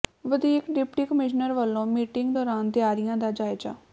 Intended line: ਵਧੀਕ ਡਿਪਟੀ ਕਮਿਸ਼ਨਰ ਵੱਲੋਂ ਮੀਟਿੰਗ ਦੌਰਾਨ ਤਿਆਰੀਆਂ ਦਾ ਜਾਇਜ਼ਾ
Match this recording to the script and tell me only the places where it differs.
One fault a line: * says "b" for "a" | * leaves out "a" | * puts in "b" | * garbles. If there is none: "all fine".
all fine